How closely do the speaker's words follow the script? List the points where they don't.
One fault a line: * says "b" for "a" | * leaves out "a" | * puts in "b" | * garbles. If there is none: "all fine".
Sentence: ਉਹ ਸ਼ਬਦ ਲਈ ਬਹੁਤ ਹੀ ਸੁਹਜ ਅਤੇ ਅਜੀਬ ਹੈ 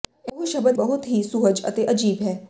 * leaves out "ਲਈ"